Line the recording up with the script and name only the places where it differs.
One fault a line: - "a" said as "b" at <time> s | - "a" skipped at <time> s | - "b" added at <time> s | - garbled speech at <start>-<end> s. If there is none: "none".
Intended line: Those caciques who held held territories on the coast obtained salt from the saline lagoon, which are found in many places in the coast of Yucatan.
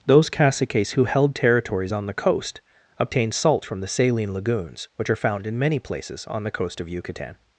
- "held" skipped at 1.4 s
- "lagoon" said as "lagoons" at 4.3 s
- "in" said as "on" at 6.3 s